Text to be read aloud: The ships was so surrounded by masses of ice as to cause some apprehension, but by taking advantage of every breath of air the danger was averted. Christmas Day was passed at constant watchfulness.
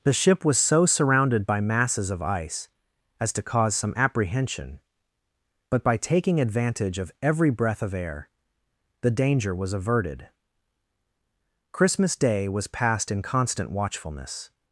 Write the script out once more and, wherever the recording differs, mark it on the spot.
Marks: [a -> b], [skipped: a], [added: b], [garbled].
The [ships -> ship] was so surrounded by masses of ice as to cause some apprehension, but by taking advantage of every breath of air the danger was averted. Christmas Day was passed [at -> in] constant watchfulness.